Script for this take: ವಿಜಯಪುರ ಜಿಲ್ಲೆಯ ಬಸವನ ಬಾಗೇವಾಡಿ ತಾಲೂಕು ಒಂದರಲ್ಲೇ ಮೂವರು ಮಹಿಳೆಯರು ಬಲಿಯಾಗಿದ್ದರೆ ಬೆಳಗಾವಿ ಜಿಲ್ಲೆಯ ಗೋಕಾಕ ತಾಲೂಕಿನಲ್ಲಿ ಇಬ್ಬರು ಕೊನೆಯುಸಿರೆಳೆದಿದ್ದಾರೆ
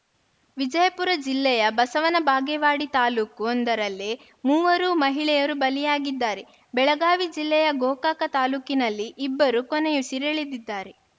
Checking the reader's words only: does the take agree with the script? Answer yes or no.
yes